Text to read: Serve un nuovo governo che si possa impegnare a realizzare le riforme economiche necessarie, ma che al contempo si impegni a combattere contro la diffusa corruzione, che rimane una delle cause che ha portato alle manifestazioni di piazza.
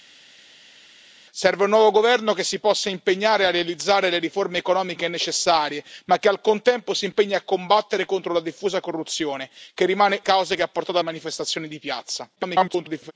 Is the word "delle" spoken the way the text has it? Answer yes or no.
no